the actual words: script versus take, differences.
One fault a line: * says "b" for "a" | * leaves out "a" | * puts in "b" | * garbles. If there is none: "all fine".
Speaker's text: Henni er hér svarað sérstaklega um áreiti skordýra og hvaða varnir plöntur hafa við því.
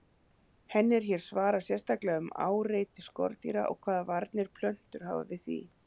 all fine